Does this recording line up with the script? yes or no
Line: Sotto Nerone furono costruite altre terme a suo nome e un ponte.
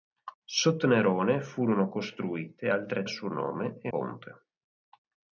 no